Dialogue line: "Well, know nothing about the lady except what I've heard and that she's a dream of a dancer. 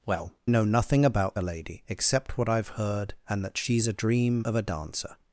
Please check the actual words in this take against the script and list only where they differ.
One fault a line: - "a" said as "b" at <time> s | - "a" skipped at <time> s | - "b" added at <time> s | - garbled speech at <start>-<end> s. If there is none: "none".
none